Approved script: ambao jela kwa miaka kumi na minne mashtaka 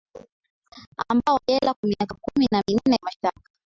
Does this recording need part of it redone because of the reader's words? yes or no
no